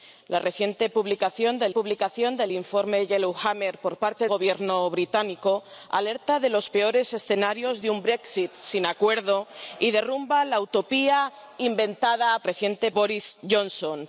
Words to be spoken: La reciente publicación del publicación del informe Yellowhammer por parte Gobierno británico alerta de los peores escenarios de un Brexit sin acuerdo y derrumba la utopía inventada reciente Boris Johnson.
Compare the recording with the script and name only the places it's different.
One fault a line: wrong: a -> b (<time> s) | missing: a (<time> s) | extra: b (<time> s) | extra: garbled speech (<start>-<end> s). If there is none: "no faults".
no faults